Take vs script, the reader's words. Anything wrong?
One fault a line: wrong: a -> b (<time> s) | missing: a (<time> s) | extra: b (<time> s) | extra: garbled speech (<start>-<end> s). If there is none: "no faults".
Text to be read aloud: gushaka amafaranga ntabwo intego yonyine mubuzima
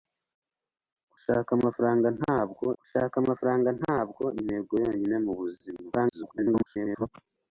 extra: gushaka amafaranga ntabwo (2.8 s)
extra: garbled speech (5.9-7.1 s)